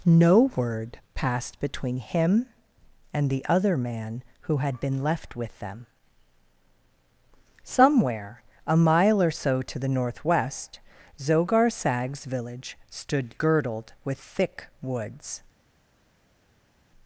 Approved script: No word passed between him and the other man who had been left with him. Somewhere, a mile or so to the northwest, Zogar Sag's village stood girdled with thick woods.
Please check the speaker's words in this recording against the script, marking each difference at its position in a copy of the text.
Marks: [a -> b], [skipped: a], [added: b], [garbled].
No word passed between him and the other man who had been left with [him. -> them] Somewhere, a mile or so to the northwest, Zogar Sag's village stood girdled with thick woods.